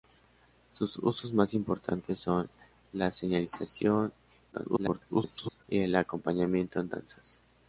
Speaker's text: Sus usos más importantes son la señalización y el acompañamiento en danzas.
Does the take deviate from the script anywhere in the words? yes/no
yes